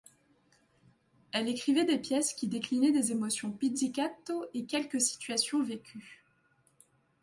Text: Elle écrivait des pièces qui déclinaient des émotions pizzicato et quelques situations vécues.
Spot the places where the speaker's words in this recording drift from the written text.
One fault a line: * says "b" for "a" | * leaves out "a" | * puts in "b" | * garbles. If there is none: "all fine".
all fine